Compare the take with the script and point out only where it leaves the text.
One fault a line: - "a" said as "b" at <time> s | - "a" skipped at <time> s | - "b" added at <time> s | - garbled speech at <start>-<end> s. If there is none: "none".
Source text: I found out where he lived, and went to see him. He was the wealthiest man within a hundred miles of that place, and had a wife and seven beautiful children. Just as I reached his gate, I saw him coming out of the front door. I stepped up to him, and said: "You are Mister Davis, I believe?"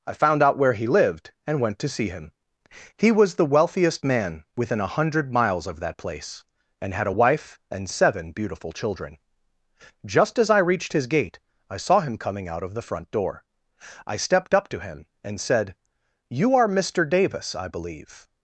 none